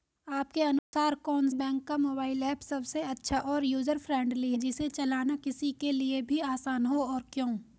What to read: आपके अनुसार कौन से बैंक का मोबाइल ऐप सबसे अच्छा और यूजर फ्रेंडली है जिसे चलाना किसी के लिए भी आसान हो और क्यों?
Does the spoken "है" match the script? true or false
false